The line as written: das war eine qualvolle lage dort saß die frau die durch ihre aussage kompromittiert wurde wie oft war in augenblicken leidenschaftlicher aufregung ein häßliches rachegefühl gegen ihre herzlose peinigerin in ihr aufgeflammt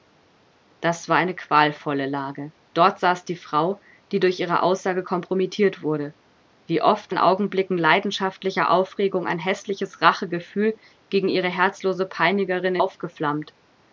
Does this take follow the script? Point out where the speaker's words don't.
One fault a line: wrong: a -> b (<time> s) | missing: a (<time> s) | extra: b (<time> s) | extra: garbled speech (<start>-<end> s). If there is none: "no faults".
missing: war (7.1 s)
missing: in ihr (12.8 s)